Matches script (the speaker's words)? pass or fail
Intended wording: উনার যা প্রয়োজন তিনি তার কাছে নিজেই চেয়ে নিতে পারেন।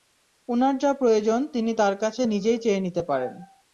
pass